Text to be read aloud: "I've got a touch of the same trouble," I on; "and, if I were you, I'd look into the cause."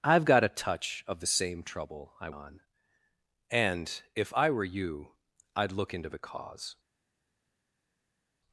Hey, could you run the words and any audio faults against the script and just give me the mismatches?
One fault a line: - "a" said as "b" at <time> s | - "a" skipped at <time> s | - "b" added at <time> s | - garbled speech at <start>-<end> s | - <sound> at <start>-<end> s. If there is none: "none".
none